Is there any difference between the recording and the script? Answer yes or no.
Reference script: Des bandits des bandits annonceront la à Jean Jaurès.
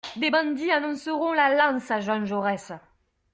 yes